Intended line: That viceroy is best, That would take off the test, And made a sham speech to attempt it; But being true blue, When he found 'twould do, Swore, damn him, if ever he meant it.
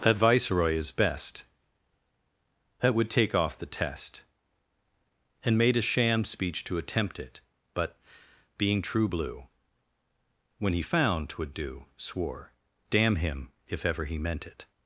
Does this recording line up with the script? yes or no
yes